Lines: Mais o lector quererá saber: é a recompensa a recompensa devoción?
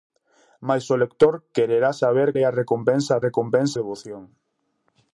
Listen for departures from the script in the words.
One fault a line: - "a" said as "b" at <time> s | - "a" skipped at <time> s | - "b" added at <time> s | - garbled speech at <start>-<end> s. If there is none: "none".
none